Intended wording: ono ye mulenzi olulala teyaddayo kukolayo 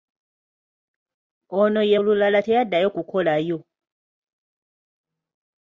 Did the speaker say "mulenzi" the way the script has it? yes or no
no